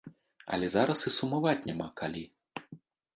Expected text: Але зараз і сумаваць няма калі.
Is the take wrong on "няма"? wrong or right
right